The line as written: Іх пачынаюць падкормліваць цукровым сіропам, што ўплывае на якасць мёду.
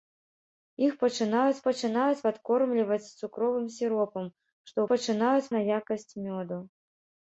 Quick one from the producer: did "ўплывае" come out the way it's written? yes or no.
no